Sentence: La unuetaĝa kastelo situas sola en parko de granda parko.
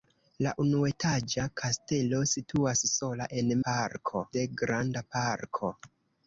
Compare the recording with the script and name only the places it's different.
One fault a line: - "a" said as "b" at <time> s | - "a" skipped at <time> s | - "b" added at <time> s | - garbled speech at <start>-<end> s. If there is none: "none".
none